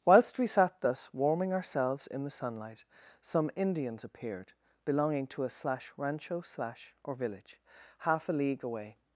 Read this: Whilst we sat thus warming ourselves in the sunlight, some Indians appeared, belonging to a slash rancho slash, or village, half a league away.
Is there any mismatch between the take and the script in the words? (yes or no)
no